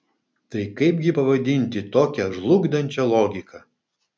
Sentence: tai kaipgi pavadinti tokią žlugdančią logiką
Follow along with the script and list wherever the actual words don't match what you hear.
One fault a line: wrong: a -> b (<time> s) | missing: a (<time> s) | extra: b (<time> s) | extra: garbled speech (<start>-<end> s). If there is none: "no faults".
no faults